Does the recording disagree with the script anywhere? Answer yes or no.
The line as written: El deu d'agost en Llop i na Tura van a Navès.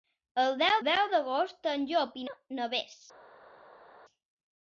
yes